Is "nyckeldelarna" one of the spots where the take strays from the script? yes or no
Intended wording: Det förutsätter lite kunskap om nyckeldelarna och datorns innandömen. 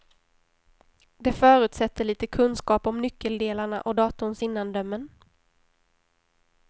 no